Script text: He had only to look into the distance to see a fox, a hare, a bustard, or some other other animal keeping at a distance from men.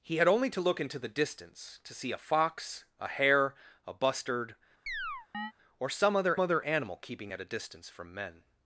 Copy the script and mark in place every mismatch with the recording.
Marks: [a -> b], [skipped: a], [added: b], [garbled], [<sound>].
He had only to look into the distance to see a fox, a hare, a bustard, [chirp] or some other other animal keeping at a distance from men.